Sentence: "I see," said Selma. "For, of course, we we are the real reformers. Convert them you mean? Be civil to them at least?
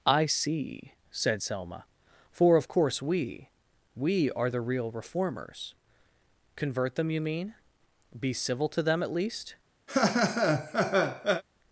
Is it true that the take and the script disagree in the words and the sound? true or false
true